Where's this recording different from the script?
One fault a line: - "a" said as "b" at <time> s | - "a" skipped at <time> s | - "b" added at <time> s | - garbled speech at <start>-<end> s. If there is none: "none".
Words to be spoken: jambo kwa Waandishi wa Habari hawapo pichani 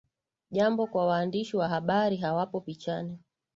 none